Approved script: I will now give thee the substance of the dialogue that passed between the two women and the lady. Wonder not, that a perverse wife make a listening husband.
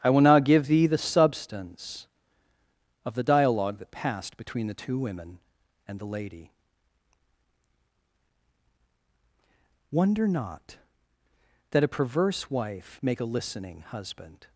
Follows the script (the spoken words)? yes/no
yes